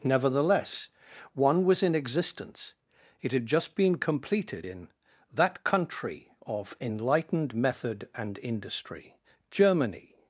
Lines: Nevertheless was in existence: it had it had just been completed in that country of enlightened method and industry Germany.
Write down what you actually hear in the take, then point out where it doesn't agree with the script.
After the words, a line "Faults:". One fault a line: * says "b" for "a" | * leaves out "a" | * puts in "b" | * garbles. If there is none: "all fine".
Nevertheless one was in existence: it had just been completed in that country of enlightened method and industry Germany.
Faults:
* puts in "one"
* leaves out "it had"